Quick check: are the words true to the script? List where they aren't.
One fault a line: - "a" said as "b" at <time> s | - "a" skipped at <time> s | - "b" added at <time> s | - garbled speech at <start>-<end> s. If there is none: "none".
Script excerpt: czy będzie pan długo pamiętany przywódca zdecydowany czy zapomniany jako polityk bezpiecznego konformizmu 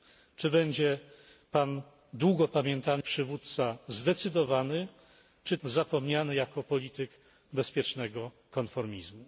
none